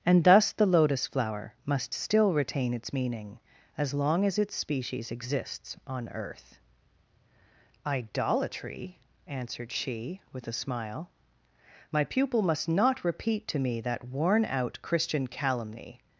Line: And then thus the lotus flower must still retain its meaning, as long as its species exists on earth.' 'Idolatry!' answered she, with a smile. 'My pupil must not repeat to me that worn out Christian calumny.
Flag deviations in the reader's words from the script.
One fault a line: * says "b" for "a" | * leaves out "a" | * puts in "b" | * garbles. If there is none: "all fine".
* leaves out "then"